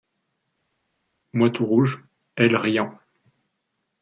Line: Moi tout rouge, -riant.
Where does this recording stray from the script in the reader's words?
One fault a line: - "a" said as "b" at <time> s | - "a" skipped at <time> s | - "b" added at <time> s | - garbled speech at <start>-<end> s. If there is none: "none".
- "elle" added at 2.3 s